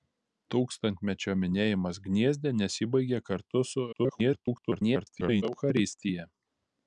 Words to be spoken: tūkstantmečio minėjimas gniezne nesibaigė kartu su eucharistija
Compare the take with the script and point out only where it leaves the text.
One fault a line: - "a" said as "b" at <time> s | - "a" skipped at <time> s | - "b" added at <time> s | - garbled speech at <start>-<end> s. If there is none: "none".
- garbled speech at 3.9-5.4 s